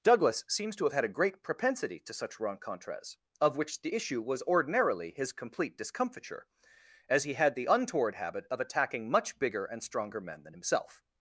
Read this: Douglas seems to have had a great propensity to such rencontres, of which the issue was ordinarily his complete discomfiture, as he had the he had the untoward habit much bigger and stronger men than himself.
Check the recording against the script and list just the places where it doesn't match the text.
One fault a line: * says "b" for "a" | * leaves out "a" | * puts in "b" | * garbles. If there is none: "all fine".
* says "untoward habit of attacking" for "he had the untoward habit"